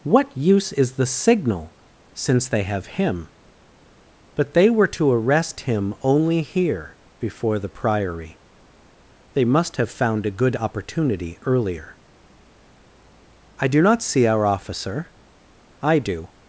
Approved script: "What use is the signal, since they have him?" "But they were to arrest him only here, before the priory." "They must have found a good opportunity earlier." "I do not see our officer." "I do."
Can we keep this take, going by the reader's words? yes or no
yes